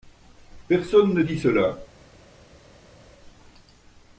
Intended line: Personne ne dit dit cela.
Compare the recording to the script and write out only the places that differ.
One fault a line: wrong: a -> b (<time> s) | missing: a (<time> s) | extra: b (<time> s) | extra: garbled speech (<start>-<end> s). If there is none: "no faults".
missing: dit (1.4 s)